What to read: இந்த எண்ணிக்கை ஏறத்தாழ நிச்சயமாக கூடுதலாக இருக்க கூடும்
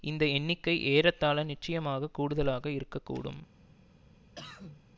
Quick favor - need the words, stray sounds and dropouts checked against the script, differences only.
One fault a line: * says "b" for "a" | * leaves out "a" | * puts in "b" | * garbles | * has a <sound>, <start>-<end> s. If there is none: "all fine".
* has a cough, 4.3-4.8 s